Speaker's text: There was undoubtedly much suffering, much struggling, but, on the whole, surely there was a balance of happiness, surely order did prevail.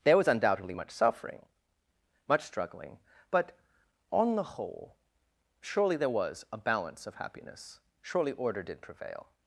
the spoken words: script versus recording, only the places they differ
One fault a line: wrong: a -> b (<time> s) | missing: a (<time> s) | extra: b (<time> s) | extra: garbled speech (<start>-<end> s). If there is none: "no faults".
no faults